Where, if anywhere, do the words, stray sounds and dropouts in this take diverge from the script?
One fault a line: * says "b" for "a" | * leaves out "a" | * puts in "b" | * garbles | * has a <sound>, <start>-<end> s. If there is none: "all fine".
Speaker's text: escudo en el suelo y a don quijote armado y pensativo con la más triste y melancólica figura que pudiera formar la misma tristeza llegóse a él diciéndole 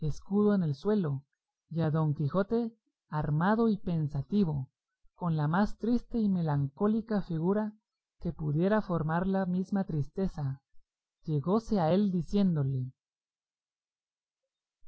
all fine